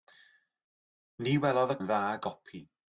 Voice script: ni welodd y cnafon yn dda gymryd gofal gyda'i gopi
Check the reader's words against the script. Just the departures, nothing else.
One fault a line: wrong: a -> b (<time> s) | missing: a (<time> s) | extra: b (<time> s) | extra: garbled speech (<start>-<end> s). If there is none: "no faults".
missing: cnafon (1.8 s)
missing: gymryd gofal gyda'i (2.0 s)